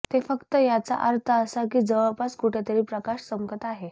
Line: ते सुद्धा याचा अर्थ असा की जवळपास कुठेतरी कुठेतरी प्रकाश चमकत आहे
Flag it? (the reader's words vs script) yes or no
yes